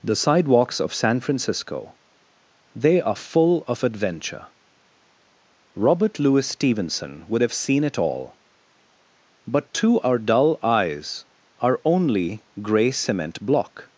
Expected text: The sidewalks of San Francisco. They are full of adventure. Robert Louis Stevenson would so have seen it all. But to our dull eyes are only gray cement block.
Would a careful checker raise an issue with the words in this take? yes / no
yes